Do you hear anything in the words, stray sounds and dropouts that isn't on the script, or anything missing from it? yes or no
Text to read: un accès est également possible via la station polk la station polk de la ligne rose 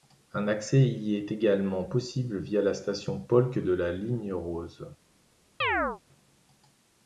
yes